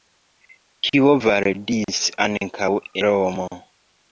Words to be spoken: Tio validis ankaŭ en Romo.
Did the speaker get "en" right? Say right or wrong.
wrong